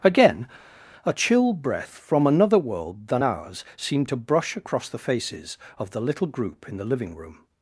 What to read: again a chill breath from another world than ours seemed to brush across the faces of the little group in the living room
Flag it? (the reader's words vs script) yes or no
no